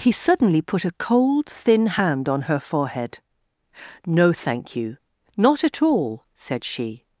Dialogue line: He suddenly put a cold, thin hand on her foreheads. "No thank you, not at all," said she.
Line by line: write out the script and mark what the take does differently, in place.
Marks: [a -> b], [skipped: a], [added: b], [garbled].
He suddenly put a cold, thin hand on her [foreheads. -> forehead] "No thank you, not at all," said she.